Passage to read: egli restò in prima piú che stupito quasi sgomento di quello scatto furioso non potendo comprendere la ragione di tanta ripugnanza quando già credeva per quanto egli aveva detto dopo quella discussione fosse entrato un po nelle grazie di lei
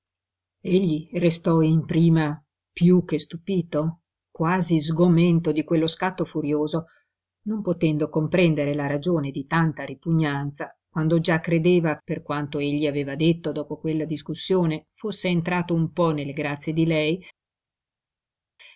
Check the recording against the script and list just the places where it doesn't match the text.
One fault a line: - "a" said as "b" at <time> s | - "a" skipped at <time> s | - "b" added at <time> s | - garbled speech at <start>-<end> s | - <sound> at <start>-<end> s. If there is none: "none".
none